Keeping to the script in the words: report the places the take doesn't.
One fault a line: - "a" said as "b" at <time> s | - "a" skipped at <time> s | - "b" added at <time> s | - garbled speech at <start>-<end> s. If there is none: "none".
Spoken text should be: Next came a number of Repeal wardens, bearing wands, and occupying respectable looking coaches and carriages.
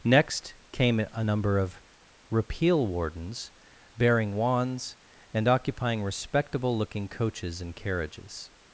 none